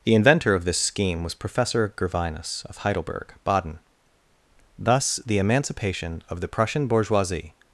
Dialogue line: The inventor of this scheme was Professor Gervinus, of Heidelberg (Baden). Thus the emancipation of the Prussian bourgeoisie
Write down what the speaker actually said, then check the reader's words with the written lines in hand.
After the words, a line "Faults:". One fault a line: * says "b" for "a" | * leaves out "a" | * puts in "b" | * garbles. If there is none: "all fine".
The inventor of this scheme was Professor Gervinus, of Heidelberg (Baden). Thus the emancipation of the Prussian bourgeoisie
Faults:
all fine